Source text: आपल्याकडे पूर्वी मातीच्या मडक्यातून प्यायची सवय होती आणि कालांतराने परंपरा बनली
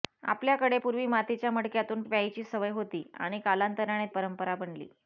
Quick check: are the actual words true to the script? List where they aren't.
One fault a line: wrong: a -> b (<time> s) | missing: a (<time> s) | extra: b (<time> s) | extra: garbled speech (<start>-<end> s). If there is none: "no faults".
no faults